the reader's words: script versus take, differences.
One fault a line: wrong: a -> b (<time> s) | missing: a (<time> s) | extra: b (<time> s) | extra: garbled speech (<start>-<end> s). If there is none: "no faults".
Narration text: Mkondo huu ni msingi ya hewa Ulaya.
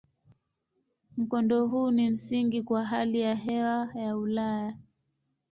extra: kwa hali (2.6 s)
extra: ya (3.9 s)